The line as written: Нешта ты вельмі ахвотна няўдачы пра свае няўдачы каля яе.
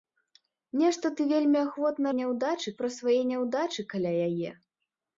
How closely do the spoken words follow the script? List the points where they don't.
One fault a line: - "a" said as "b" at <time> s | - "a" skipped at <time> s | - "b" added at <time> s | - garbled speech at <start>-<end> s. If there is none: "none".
none